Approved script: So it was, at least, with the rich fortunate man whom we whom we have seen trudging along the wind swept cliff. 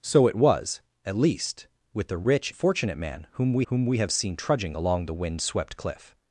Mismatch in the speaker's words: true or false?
false